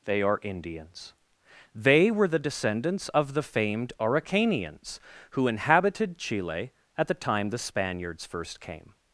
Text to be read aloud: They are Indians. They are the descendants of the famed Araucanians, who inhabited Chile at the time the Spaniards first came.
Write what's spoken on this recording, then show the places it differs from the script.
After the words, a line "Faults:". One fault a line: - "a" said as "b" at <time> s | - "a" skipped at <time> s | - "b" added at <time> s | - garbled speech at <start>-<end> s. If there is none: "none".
They are Indians. They were the descendants of the famed Araucanians, who inhabited Chile at the time the Spaniards first came.
Faults:
- "are" said as "were" at 2.1 s